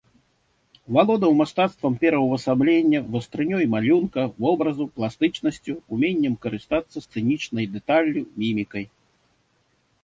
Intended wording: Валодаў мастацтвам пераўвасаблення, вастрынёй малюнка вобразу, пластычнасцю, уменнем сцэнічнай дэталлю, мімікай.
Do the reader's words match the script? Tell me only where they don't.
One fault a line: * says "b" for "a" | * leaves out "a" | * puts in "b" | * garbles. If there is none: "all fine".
* puts in "карыстацца"